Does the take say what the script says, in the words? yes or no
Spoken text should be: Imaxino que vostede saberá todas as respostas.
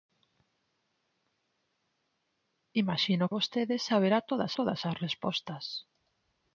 no